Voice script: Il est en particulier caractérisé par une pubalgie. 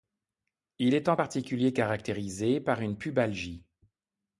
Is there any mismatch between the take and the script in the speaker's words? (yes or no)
no